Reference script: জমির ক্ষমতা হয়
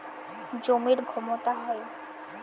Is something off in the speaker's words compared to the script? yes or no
no